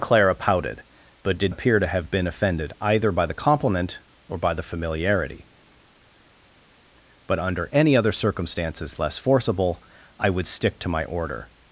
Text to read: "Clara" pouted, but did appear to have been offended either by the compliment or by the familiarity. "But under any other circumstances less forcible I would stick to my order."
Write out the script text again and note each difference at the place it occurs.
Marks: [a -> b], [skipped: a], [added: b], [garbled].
"Clara" pouted, but did appear to have been offended either by the compliment or by the familiarity. "But under any other circumstances less forcible I would stick to my order."